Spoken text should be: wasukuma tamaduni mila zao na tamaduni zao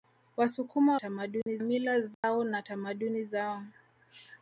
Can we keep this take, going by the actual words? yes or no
yes